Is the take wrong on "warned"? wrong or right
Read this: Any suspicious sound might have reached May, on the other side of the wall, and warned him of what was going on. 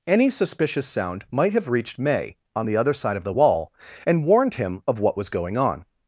right